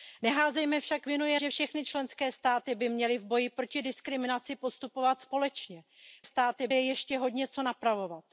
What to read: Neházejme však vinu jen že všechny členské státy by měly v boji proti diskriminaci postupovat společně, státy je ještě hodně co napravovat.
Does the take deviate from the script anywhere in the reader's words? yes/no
no